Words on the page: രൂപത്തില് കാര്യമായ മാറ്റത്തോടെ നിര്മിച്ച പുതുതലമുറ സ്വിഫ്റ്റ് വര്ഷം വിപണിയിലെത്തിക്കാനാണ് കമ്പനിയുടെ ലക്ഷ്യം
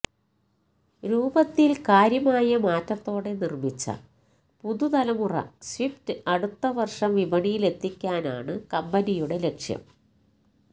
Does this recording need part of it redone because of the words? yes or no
yes